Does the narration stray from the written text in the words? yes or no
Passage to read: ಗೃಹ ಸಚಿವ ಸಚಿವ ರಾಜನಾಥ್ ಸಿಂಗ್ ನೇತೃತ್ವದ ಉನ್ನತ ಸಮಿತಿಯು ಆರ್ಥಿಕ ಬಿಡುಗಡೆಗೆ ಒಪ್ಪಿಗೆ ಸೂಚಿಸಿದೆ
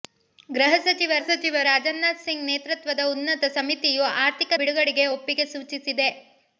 no